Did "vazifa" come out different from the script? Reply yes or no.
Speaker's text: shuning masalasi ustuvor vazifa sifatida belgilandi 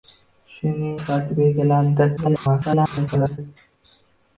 yes